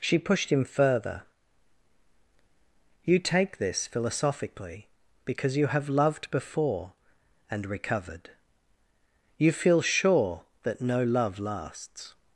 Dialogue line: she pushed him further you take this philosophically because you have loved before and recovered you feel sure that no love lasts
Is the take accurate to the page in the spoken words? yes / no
yes